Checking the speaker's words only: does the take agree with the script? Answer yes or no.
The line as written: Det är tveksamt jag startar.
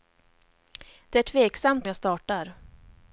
yes